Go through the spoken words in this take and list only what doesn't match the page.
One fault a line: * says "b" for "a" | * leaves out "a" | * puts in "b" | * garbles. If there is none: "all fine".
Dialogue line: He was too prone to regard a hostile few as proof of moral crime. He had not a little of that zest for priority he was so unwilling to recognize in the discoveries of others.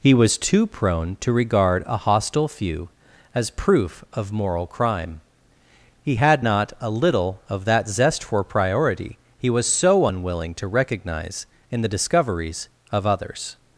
all fine